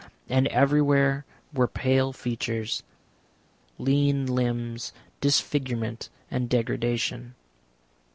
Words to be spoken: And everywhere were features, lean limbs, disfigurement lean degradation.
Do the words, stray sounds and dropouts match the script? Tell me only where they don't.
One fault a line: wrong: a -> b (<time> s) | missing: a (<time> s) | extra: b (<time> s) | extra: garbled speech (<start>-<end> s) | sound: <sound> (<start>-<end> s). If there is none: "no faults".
extra: pale (1.7 s)
wrong: lean -> and (6.3 s)